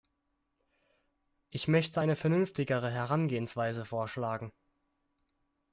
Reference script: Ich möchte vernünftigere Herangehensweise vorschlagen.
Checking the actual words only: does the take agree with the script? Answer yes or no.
no